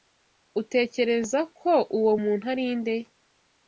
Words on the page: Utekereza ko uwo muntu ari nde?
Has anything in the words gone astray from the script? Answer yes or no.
no